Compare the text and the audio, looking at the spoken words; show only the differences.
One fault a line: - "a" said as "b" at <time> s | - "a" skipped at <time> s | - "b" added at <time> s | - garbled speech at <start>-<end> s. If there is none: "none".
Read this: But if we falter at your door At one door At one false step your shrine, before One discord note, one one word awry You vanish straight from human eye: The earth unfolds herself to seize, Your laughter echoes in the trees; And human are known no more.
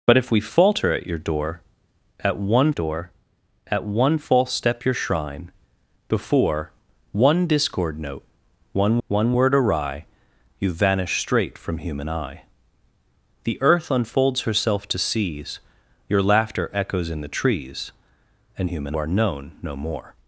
none